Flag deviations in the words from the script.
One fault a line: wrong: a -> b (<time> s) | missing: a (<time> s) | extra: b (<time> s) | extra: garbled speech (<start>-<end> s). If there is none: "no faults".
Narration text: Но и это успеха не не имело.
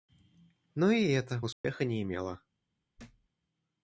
missing: не (2.0 s)